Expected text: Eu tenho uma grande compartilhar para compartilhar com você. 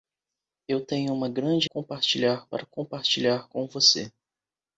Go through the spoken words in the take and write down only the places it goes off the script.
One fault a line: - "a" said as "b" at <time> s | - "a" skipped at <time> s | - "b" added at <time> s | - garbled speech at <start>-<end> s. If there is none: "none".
none